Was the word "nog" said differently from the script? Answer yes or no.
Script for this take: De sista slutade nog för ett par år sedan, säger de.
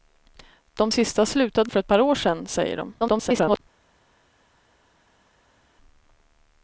yes